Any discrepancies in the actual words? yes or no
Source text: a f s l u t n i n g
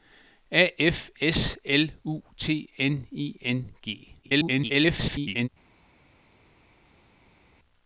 yes